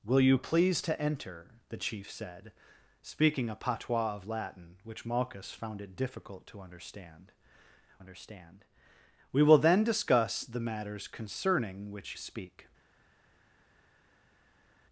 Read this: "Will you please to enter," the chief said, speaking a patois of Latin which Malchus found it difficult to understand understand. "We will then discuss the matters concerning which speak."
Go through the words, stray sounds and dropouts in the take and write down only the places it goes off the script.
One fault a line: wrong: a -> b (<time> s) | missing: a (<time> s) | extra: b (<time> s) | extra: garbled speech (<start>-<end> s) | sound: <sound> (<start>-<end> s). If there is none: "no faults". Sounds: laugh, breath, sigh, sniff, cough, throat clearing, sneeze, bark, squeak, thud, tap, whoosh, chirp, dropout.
no faults